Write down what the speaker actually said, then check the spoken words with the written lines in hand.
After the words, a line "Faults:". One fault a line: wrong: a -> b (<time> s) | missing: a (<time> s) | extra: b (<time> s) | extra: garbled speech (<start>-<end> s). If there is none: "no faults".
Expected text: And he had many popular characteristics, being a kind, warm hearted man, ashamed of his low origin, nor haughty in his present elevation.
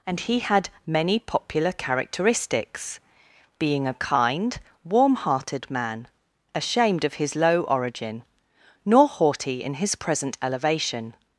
And he had many popular characteristics, being a kind, warm hearted man, ashamed of his low origin, nor haughty in his present elevation.
Faults:
no faults